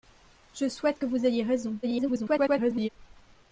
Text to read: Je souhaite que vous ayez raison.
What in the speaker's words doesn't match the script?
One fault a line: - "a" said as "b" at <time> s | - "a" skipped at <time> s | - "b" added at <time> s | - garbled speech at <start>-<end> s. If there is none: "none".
- garbled speech at 1.8-2.9 s